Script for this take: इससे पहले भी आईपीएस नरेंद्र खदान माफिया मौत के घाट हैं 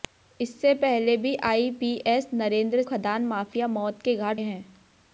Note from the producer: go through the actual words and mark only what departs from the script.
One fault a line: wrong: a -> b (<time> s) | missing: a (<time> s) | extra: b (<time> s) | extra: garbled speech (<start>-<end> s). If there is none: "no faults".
no faults